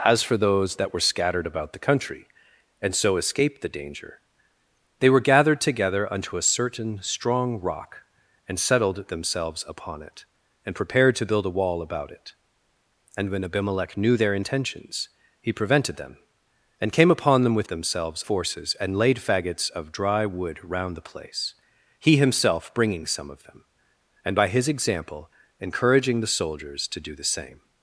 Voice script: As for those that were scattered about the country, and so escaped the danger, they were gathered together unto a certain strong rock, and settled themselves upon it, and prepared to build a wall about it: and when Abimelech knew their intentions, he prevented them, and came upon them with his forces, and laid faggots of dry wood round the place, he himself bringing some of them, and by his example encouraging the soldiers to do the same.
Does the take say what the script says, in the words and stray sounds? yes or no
no